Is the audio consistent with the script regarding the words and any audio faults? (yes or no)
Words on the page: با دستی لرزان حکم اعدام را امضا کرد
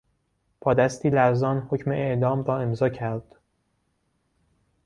yes